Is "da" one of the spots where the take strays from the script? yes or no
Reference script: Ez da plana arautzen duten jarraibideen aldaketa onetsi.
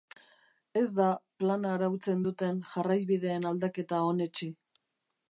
no